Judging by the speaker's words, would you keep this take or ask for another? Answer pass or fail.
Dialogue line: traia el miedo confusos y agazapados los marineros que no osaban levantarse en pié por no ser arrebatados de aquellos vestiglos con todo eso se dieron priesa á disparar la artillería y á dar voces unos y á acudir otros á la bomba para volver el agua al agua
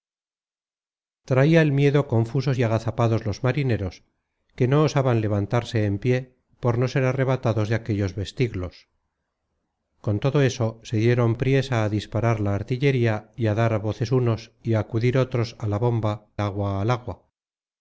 fail